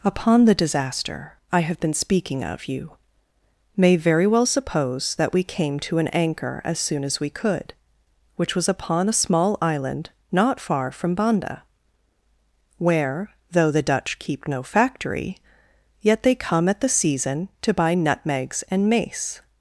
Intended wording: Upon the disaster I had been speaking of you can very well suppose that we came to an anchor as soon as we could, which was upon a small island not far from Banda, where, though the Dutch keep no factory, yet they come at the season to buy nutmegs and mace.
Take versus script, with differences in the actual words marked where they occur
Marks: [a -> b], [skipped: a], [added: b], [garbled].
Upon the disaster I [had -> have] been speaking of you [can -> may] very well suppose that we came to an anchor as soon as we could, which was upon a small island not far from Banda, where, though the Dutch keep no factory, yet they come at the season to buy nutmegs and mace.